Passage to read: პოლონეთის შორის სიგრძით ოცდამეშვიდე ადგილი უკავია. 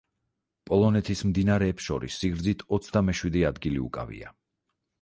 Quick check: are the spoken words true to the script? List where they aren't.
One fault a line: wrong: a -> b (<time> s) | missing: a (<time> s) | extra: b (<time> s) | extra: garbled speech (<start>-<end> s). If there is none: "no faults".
extra: მდინარეებს (1.3 s)